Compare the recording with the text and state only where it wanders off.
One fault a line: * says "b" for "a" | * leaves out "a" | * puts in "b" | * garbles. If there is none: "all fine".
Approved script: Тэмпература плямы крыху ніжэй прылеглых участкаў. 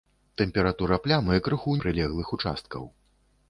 * leaves out "ніжэй"